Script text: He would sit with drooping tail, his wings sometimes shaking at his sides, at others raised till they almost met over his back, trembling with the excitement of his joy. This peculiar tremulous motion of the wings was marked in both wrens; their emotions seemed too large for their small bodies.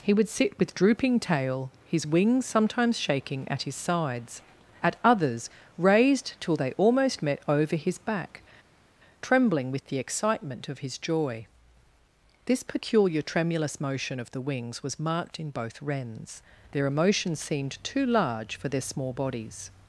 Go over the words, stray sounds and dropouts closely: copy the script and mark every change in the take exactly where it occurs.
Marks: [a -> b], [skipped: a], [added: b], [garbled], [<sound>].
He would sit with drooping tail, his wings sometimes shaking at his sides, at others raised till they almost met over his back, trembling with the excitement of his joy. This peculiar tremulous motion of the wings was marked in both wrens; their emotions seemed too large for their small bodies.